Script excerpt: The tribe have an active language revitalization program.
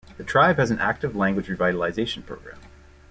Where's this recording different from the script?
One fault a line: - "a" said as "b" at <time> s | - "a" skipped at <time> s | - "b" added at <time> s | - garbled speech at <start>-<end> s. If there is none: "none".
- "have" said as "has" at 0.6 s